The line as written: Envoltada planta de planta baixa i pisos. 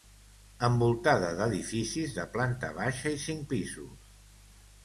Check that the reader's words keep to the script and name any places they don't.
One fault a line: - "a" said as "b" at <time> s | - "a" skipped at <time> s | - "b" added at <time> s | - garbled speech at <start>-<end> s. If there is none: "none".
- "planta" said as "d'edificis" at 1.4 s
- "cinc" added at 3.3 s